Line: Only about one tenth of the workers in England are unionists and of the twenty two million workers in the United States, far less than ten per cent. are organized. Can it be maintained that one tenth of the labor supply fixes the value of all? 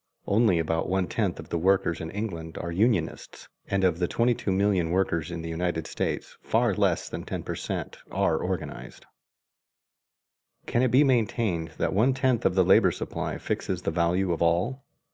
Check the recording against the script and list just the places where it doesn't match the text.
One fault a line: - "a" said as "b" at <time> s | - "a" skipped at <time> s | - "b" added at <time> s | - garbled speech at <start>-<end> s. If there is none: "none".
none